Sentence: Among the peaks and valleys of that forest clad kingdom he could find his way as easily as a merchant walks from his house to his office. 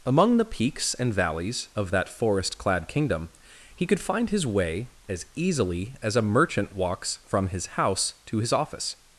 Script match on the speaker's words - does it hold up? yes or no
yes